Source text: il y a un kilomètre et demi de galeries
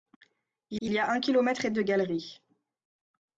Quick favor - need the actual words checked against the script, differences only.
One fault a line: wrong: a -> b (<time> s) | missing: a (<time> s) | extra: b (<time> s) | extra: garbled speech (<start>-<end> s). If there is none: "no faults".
extra: il (0.8 s)
missing: demi (1.7 s)